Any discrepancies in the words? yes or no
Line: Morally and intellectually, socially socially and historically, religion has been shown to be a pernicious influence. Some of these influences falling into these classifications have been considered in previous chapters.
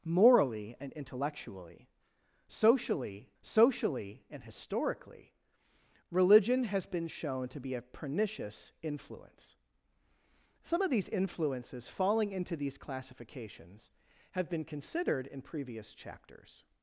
no